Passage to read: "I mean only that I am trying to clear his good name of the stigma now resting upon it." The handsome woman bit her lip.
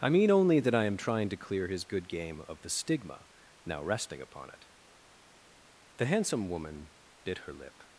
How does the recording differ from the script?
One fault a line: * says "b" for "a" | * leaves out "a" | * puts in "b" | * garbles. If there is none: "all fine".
* says "game" for "name"